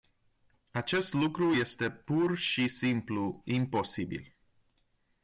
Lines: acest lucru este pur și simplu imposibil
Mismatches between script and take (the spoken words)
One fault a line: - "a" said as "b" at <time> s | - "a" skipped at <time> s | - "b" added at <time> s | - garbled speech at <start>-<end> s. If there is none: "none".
none